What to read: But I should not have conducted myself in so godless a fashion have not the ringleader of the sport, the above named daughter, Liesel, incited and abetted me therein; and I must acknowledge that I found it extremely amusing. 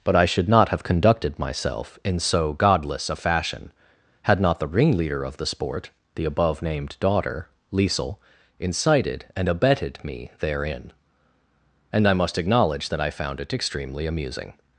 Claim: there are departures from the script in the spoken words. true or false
true